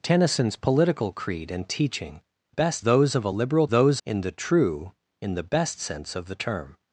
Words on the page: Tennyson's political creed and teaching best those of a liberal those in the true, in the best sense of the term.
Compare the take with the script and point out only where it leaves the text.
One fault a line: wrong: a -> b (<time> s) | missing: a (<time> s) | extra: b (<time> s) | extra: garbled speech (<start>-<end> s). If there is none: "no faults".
no faults